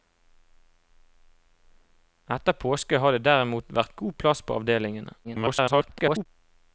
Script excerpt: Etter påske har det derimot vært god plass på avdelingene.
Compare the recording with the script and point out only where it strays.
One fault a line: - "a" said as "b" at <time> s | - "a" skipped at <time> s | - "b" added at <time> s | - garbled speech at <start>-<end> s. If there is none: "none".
- garbled speech at 5.2-6.3 s